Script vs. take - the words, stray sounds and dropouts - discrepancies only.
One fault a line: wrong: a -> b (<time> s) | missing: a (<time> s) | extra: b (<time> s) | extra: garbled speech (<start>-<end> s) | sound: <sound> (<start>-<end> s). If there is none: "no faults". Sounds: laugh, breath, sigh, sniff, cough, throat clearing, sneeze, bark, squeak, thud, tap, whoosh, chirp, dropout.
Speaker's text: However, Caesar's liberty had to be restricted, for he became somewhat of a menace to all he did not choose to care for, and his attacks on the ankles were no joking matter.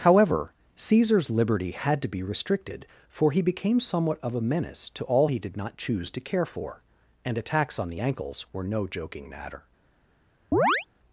missing: his (7.4 s)
sound: chirp (10.5-10.9 s)